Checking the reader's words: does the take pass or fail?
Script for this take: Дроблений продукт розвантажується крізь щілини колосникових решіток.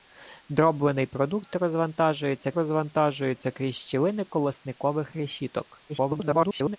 fail